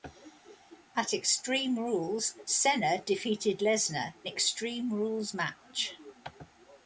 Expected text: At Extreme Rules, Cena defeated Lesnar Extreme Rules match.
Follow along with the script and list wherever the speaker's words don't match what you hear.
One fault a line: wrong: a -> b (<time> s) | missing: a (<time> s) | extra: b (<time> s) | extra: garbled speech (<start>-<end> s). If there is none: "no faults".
no faults